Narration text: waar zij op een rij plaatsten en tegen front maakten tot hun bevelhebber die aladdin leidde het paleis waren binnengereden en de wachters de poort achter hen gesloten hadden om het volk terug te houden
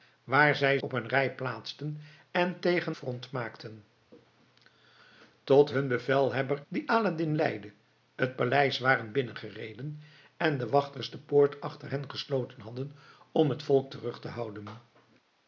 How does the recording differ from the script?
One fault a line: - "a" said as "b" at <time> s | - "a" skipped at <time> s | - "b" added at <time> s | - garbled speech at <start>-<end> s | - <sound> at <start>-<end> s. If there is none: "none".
none